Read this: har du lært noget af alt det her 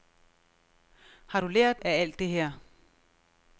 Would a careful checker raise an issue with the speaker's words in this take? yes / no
yes